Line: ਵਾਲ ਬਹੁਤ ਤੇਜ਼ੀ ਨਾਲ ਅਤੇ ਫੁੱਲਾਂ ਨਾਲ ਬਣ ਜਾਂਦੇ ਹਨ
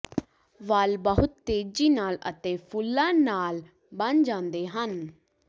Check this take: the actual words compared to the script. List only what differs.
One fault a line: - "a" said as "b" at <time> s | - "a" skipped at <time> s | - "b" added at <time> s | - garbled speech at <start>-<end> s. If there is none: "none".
none